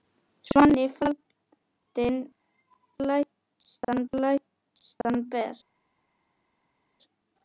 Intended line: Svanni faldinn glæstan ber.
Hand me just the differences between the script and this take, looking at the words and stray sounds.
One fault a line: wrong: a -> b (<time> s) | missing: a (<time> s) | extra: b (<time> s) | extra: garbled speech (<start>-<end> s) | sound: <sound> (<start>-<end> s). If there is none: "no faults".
extra: glæstan (4.1 s)